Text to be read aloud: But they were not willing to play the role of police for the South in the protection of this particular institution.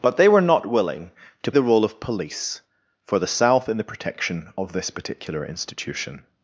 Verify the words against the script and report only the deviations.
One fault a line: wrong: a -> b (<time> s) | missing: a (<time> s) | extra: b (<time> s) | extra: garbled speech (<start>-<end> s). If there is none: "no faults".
missing: play (1.5 s)